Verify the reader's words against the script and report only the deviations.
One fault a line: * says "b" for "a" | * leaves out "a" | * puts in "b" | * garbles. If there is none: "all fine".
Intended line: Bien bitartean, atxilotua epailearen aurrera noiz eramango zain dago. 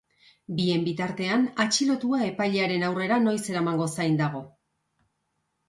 all fine